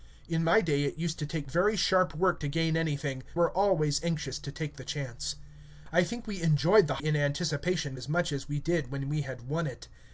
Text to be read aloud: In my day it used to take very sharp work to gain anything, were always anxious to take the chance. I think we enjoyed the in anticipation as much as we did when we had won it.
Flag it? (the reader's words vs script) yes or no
no